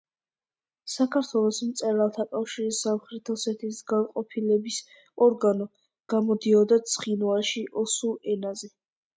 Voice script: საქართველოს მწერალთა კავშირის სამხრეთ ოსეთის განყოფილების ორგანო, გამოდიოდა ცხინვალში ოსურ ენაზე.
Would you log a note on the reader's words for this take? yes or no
no